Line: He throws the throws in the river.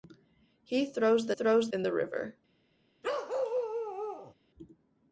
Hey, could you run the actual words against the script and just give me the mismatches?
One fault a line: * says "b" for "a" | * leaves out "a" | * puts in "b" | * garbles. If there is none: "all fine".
all fine